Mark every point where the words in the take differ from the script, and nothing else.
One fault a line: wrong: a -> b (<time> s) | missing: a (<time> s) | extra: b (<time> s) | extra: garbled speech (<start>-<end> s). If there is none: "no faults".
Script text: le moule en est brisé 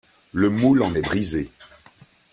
no faults